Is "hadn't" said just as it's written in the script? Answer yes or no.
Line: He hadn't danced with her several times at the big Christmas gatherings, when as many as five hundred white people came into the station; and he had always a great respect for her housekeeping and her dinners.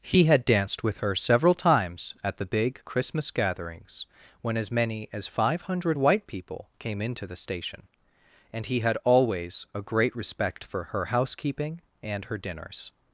no